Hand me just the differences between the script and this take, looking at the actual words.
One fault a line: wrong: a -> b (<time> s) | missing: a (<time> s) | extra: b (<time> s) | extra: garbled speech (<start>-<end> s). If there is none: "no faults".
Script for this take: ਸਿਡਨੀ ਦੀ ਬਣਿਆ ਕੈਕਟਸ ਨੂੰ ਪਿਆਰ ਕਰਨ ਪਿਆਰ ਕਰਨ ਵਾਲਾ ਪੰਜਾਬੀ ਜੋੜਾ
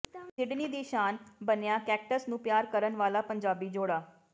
extra: ਸ਼ਾਨ (0.8 s)
missing: ਪਿਆਰ ਕਰਨ (3.0 s)